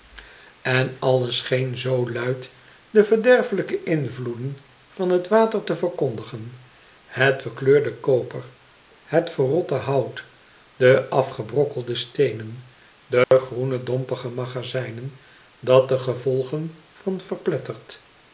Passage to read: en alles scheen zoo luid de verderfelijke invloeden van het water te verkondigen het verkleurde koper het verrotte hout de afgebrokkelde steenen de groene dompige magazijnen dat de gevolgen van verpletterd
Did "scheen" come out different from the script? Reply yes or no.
no